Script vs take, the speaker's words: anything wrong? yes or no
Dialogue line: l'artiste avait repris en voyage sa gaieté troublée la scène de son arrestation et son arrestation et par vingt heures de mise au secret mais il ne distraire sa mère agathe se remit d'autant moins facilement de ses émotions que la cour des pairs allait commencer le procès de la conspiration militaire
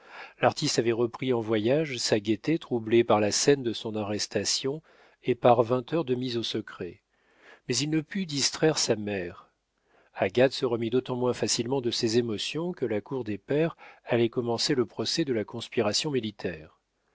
yes